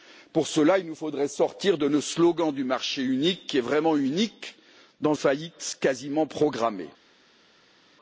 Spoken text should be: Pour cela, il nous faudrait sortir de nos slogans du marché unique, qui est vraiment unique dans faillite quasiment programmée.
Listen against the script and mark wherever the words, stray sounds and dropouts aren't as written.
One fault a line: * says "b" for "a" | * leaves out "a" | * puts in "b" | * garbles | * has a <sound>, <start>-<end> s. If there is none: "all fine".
all fine